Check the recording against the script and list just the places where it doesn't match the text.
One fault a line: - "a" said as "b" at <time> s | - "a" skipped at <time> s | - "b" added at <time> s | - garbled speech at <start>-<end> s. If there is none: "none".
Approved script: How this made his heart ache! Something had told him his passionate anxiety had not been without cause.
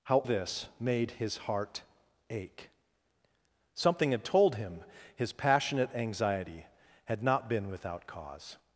none